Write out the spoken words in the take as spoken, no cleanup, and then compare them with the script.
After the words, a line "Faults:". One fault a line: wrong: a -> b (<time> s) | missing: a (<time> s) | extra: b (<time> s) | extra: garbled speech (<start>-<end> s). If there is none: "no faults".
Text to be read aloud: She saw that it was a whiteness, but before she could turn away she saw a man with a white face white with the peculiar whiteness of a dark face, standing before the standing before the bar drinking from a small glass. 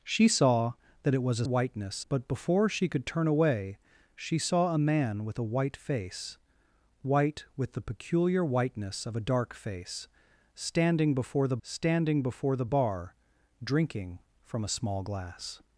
She saw that it was a whiteness, but before she could turn away she saw a man with a white face white with the peculiar whiteness of a dark face, standing before the standing before the bar drinking from a small glass.
Faults:
no faults